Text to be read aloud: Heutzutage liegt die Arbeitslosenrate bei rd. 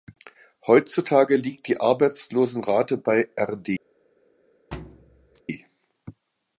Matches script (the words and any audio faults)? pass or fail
fail